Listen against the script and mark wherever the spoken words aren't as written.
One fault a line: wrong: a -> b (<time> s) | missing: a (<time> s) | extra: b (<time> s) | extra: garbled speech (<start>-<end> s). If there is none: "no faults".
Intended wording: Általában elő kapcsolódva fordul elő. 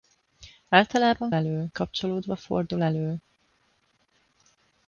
no faults